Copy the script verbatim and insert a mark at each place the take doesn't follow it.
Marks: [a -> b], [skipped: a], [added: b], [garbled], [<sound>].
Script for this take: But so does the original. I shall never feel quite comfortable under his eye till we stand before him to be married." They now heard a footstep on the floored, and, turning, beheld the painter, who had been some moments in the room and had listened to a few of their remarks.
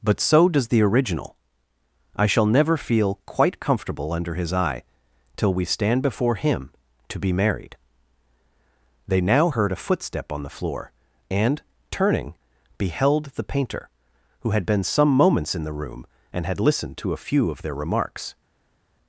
But so does the original. I shall never feel quite comfortable under his eye till we stand before him to be married." They now heard a footstep on the [floored, -> floor] and, turning, beheld the painter, who had been some moments in the room and had listened to a few of their remarks.